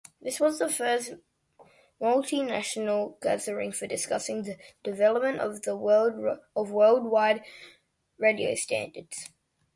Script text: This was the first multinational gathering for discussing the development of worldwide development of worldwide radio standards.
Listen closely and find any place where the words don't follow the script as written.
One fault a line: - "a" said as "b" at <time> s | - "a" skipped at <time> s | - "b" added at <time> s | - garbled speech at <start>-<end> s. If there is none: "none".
- "development of worldwide" skipped at 7.5 s